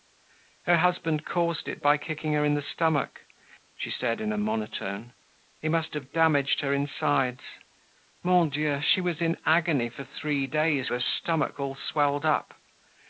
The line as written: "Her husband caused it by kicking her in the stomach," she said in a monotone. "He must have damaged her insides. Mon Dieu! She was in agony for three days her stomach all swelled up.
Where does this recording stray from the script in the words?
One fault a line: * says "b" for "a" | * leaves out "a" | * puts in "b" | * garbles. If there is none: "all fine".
all fine